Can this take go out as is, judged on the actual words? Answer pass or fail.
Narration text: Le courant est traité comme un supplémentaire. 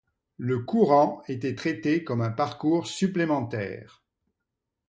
fail